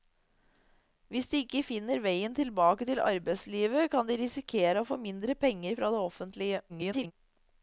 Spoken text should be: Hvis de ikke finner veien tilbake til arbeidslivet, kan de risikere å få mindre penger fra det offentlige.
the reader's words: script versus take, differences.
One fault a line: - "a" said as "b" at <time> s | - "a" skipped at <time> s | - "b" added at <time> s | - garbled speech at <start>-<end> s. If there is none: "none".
- garbled speech at 6.7-7.1 s